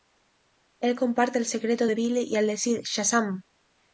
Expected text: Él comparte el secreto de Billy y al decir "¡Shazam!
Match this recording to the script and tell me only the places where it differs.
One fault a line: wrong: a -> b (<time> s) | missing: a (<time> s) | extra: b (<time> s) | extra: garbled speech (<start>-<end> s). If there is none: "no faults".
no faults